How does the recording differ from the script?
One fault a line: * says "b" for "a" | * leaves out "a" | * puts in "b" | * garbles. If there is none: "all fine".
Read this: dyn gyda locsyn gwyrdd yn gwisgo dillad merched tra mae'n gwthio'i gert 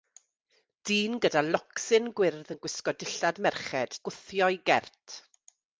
* leaves out "tra mae'n"